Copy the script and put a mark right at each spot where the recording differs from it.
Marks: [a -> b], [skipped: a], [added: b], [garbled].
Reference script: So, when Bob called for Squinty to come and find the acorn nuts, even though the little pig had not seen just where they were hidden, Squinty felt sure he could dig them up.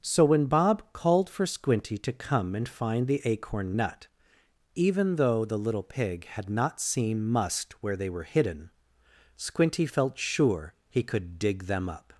So, when Bob called for Squinty to come and find the acorn [nuts, -> nut] even though the little pig had not seen [just -> must] where they were hidden, Squinty felt sure he could dig them up.